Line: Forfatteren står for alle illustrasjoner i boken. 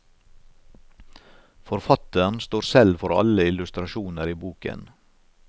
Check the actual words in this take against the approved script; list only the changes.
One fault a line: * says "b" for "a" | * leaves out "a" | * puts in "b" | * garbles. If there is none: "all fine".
* puts in "selv"